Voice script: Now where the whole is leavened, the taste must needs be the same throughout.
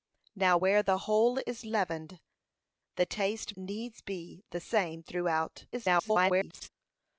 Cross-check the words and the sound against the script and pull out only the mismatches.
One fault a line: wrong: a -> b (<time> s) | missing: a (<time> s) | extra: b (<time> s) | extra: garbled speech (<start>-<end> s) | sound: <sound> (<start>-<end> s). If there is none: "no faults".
missing: must (3.5 s)
extra: garbled speech (5.7-6.7 s)